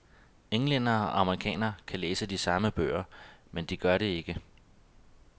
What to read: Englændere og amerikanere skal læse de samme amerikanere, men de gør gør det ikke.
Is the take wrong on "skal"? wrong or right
wrong